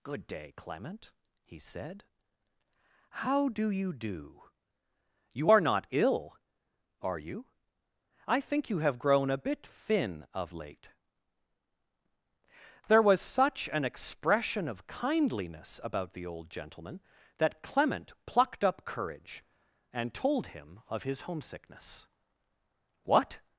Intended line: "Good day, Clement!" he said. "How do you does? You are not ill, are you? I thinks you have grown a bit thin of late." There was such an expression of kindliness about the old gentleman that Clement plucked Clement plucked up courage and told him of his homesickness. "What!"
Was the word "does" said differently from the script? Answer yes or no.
yes